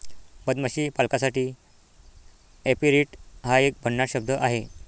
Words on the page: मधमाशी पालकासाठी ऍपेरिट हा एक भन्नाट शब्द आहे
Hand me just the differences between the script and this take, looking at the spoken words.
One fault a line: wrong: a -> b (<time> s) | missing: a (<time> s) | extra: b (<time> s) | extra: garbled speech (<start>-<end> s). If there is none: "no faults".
no faults